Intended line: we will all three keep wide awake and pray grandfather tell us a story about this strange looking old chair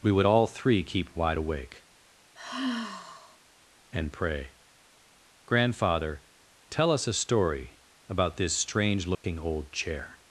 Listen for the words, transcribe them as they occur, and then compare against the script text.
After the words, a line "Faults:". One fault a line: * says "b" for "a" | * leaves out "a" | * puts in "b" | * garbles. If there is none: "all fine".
we would all three keep wide awake and pray grandfather tell us a story about this strange looking old chair
Faults:
* says "would" for "will"